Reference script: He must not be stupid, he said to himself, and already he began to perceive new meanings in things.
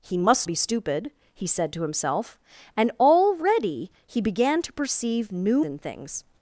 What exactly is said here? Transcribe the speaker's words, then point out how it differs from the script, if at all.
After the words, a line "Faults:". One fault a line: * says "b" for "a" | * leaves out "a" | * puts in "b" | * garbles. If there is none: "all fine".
He must be stupid, he said to himself, and already he began to perceive new in things.
Faults:
* leaves out "not"
* leaves out "meanings"